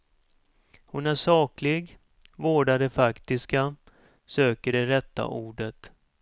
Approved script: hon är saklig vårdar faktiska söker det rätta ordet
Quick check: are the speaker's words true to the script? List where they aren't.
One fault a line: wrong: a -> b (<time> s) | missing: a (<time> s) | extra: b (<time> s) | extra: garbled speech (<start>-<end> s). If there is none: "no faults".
extra: det (2.8 s)